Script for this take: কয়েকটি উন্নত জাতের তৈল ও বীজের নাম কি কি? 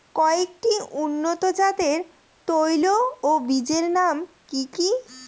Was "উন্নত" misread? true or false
false